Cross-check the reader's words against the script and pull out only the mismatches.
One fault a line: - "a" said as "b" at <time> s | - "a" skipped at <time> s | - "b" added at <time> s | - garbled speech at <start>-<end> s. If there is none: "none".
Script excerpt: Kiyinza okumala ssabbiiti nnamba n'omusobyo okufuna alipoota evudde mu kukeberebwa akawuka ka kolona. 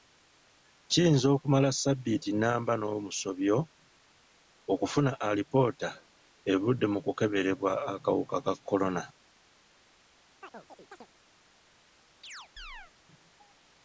none